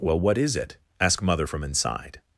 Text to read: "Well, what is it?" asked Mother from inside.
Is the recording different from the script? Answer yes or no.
yes